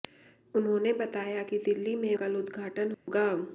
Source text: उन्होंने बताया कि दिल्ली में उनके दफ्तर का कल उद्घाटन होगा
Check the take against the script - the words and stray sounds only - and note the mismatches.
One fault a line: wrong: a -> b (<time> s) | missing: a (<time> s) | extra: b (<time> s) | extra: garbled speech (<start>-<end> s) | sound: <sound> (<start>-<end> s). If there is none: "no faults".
missing: उनके दफ्तर का (2.1 s)
sound: dropout (2.9-3.1 s)